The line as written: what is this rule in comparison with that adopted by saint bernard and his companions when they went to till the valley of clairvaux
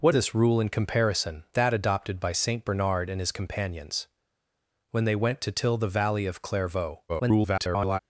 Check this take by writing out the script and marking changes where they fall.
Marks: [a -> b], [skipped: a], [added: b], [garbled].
what [skipped: is] this rule in comparison [skipped: with] that adopted by saint bernard and his companions when they went to till the valley of clairvaux [garbled]